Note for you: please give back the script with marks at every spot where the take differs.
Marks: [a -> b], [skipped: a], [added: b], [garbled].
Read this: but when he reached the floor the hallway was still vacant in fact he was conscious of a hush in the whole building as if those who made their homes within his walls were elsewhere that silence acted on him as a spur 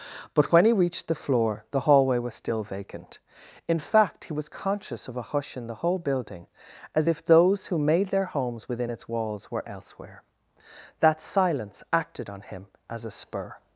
but when he reached the floor the hallway was still vacant in fact he was conscious of a hush in the whole building as if those who made their homes within [his -> its] walls were elsewhere that silence acted on him as a spur